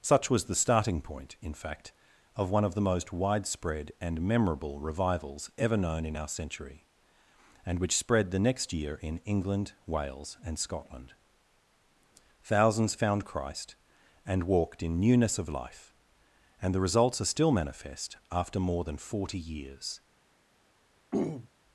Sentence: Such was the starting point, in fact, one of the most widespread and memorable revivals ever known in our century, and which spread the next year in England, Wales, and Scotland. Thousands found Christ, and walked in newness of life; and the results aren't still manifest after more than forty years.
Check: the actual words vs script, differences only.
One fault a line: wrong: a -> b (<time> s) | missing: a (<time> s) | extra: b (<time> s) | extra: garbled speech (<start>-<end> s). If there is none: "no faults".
extra: of (2.4 s)
wrong: aren't -> are (17.2 s)